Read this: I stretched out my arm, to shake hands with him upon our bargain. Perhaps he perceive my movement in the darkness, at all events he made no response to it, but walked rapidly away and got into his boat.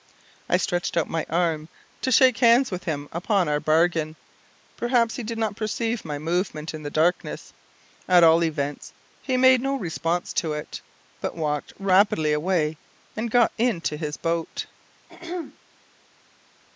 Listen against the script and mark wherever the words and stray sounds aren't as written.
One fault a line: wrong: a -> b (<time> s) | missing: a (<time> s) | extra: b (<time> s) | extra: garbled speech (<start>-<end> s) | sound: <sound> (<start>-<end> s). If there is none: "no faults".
extra: did not (5.2 s)
sound: throat clearing (15.1-15.6 s)